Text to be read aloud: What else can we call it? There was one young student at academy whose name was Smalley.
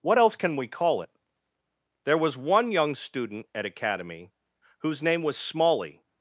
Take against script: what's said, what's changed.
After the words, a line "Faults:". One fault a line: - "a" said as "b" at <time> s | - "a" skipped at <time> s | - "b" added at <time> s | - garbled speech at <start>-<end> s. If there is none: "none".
What else can we call it? There was one young student at academy whose name was Smalley.
Faults:
none